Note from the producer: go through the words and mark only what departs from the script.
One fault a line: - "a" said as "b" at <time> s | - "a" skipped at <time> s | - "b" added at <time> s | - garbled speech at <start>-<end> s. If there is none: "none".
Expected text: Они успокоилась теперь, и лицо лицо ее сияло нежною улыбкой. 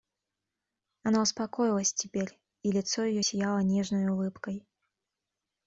- "Они" said as "Она" at 1.0 s
- "лицо" skipped at 3.0 s